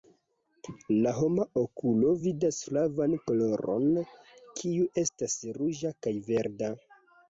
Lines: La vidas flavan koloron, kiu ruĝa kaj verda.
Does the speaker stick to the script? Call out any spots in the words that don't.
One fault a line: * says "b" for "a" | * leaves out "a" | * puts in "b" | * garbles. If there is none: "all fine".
* puts in "homa okulo"
* puts in "estas"